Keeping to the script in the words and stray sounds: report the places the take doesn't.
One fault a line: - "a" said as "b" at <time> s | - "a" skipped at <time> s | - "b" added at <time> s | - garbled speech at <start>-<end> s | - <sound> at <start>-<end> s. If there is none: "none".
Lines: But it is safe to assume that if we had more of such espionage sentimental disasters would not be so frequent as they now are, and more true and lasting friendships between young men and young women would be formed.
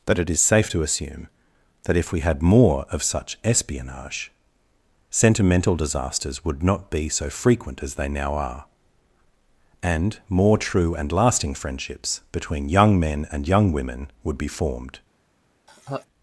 - "But" said as "That" at 0.1 s
- laugh at 15.7-16.1 s